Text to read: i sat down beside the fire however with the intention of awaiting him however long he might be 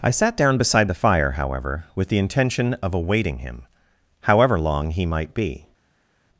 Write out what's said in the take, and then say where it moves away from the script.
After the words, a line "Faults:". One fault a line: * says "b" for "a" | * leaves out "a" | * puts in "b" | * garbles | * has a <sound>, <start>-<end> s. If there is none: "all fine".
i sat down beside the fire however with the intention of awaiting him however long he might be
Faults:
all fine